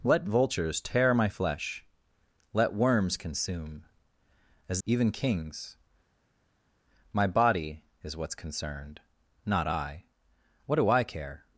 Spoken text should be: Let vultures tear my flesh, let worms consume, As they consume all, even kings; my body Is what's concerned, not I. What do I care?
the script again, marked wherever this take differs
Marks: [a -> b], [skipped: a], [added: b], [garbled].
Let vultures tear my flesh, let worms consume, As [skipped: they consume all,] even kings; my body Is what's concerned, not I. What do I care?